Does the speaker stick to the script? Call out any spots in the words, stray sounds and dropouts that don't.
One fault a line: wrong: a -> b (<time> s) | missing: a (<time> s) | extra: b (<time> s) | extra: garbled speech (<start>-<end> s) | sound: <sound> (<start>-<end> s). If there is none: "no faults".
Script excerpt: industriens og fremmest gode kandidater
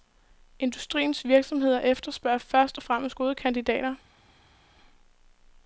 extra: virksomheder efterspørger først (1.2 s)